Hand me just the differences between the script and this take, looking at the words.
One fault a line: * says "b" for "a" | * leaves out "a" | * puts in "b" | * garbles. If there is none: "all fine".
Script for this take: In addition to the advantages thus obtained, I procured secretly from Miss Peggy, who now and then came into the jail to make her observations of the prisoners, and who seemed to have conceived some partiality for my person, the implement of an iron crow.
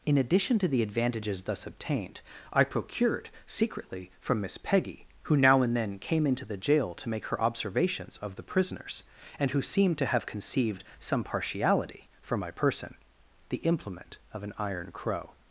all fine